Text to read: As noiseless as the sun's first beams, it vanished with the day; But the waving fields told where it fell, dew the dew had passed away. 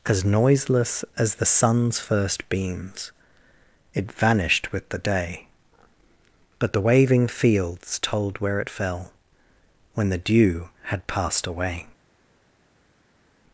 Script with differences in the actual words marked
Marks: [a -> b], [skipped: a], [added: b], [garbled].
As noiseless as the sun's first beams, it vanished with the day; But the waving fields told where it fell, [dew -> when] the dew had passed away.